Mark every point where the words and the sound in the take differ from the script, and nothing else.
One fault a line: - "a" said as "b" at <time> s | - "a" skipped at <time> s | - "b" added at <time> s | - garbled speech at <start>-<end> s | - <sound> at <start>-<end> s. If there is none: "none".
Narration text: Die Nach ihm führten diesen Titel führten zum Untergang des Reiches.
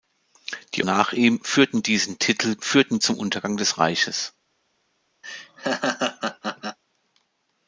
- laugh at 5.2-6.8 s